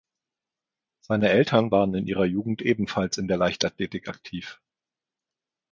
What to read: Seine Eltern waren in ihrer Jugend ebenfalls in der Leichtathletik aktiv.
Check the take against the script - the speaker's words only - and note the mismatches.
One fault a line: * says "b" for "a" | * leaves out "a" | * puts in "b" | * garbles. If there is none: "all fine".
all fine